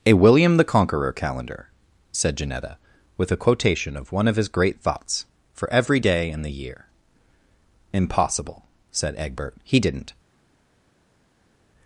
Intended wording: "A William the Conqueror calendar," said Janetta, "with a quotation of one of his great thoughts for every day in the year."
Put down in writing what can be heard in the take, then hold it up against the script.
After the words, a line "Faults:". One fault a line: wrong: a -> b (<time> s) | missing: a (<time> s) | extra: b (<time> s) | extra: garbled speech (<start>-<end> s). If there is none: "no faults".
"A William the Conqueror calendar," said Janetta, "with a quotation of one of his great thoughts for every day in the year." "Impossible," said Egbert; "he didn't
Faults:
extra: Impossible said Egbert he didn't (7.9 s)